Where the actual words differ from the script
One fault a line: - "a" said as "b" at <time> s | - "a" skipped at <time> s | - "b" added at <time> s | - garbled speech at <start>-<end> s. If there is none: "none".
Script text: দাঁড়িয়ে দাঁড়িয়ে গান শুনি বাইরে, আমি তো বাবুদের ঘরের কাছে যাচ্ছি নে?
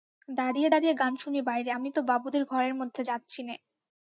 - "কাছে" said as "মধ্যে" at 2.7 s